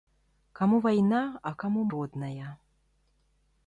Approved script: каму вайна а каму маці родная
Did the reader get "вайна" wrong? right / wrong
right